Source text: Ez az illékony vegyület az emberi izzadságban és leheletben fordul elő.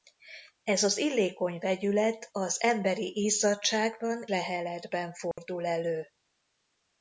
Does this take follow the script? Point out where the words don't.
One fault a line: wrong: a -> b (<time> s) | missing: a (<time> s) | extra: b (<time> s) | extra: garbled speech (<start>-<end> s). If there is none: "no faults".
missing: és (4.2 s)